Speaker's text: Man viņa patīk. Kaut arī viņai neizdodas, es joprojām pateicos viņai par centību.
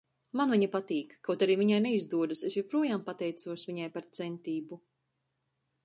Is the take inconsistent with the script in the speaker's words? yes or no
no